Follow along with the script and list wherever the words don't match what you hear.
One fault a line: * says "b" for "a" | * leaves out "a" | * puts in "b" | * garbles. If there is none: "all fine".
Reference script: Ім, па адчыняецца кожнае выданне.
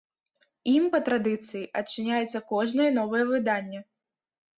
* puts in "традыцыі"
* puts in "новае"